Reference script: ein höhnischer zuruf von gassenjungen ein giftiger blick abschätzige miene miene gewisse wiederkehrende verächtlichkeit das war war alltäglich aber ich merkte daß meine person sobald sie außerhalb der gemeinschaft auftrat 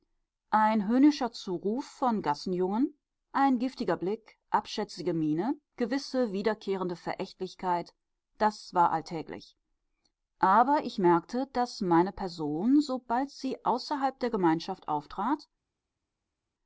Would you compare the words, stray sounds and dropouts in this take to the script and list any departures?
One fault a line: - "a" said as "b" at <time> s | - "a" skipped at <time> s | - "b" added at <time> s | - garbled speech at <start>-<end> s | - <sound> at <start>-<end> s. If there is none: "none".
- "miene" skipped at 5.5 s
- "war" skipped at 8.9 s